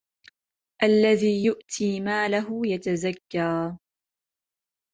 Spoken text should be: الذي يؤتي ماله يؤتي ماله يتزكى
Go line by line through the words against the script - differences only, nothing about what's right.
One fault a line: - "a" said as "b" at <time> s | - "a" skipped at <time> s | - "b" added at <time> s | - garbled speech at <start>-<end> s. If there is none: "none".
- "يؤتي ماله" skipped at 2.6 s